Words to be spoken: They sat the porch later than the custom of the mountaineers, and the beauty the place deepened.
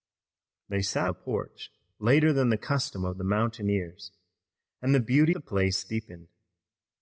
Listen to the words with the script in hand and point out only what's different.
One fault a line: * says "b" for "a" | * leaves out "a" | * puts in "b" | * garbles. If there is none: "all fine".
all fine